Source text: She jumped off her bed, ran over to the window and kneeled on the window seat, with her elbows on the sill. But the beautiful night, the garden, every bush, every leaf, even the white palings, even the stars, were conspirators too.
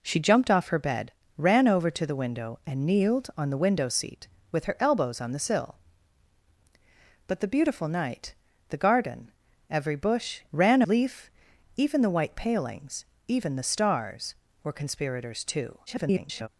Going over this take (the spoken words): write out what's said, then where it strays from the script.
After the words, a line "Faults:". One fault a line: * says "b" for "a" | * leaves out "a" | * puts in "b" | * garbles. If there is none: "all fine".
She jumped off her bed, ran over to the window and kneeled on the window seat, with her elbows on the sill. But the beautiful night, the garden, every bush, ran leaf, even the white palings, even the stars, were conspirators too. [garbled]
Faults:
* says "ran" for "every"
* garbles